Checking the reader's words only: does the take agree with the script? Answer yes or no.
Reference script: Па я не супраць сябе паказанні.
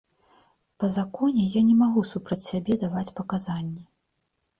no